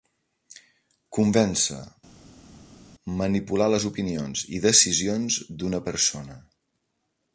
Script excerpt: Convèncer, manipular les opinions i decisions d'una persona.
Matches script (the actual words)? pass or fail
pass